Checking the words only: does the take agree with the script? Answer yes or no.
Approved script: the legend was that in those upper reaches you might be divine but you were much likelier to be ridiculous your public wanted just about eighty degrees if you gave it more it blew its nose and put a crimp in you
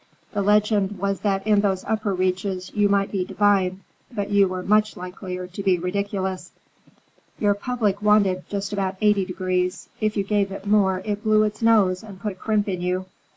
yes